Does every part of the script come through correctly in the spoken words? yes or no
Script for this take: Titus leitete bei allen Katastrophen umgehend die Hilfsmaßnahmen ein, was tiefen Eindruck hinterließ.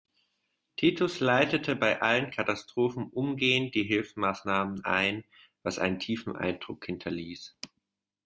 no